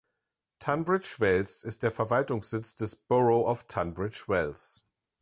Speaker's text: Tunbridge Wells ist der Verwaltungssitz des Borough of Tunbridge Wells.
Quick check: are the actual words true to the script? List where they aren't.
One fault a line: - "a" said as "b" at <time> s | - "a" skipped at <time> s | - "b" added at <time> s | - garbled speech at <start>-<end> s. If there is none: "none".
none